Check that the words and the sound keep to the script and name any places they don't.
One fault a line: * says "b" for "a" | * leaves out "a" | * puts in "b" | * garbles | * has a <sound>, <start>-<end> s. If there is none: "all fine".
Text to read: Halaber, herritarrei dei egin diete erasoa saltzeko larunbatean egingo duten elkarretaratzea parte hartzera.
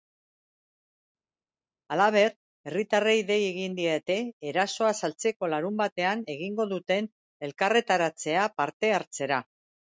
all fine